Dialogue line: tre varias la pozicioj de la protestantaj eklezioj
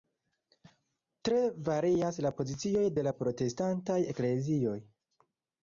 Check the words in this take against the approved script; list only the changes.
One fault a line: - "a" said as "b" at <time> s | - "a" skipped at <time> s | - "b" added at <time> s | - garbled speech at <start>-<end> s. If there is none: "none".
none